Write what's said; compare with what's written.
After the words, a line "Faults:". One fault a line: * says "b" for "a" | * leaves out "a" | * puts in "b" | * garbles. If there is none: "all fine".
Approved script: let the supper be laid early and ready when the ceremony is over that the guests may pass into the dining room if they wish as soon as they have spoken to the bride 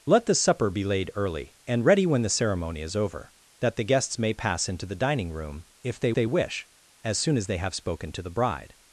let the supper be laid early and ready when the ceremony is over that the guests may pass into the dining room if they they wish as soon as they have spoken to the bride
Faults:
* puts in "they"